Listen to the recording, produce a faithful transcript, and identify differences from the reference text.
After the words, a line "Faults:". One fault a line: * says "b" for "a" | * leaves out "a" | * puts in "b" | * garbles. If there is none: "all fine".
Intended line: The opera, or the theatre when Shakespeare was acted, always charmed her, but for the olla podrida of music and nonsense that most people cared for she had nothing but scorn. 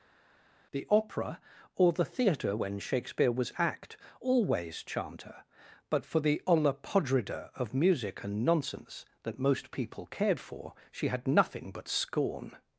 The opera, or the theatre when Shakespeare was act, always charmed her, but for the olla podrida of music and nonsense that most people cared for she had nothing but scorn.
Faults:
* says "act" for "acted"